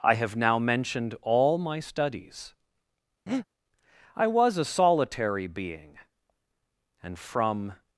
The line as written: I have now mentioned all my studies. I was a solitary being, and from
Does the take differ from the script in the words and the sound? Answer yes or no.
yes